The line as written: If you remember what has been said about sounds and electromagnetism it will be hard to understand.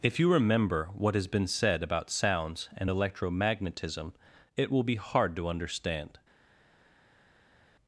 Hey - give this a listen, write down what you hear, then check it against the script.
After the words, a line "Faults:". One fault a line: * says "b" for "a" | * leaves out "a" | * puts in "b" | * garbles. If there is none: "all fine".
If you remember what has been said about sounds and electromagnetism it will be hard to understand.
Faults:
all fine